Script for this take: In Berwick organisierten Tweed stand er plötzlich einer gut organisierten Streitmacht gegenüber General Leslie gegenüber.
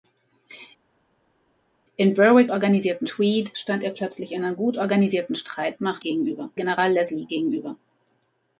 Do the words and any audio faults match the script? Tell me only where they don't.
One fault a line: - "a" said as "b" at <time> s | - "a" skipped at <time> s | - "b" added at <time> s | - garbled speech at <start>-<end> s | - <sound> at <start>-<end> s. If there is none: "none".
none